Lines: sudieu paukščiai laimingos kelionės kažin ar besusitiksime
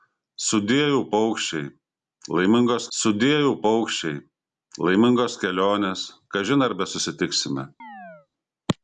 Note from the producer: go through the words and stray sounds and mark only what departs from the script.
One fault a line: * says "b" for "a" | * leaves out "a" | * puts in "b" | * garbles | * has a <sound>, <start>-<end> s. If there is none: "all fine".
* puts in "sudieu paukščiai laimingos"
* has a chirp, 7.8-8.3 s